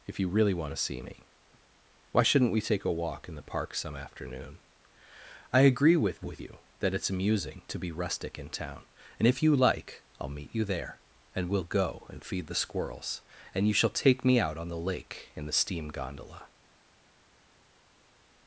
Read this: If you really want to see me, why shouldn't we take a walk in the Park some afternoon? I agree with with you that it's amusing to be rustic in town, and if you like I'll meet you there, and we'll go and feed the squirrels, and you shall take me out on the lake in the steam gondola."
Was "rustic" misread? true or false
false